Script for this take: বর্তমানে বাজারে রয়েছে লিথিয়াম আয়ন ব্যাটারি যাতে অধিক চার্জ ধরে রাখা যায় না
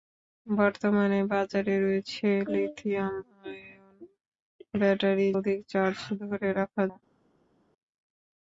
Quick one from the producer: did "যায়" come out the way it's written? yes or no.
no